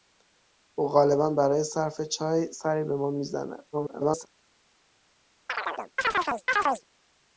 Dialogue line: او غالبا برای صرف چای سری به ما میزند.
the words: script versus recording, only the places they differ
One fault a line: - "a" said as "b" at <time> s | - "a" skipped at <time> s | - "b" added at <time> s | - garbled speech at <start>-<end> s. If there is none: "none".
- garbled speech at 3.7-4.3 s